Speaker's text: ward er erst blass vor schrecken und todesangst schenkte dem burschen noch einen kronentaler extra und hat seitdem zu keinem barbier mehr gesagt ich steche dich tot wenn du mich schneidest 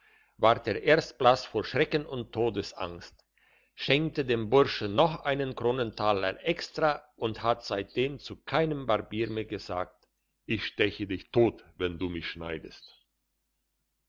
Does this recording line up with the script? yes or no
yes